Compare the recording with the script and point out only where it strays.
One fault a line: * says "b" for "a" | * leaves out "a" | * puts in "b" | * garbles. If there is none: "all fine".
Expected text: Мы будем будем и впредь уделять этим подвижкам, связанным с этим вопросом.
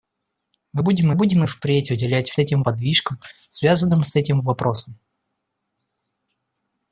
all fine